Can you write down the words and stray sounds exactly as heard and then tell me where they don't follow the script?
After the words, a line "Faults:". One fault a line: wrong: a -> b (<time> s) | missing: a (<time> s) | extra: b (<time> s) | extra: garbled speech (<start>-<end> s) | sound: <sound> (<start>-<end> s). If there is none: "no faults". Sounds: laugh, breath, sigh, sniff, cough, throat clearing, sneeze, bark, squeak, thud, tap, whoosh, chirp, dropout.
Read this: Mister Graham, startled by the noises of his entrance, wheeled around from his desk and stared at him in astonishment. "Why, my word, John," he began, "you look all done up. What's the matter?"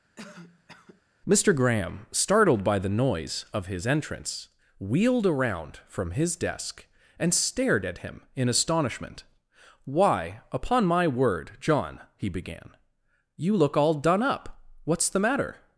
Mister Graham, startled by the noise of his entrance, wheeled around from his desk and stared at him in astonishment. "Why, upon my word, John," he began, "you look all done up. What's the matter?"
Faults:
sound: cough (0.2-1.0 s)
wrong: noises -> noise (3.0 s)
extra: upon (10.5 s)